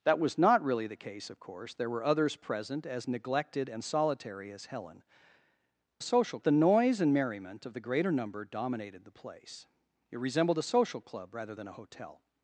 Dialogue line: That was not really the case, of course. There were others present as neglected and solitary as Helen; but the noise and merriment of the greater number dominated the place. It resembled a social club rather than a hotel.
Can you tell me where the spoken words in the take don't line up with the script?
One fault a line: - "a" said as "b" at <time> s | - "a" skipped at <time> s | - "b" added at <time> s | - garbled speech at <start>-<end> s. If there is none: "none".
- "but" said as "social" at 6.0 s